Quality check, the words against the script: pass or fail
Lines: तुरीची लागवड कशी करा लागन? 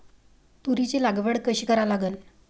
pass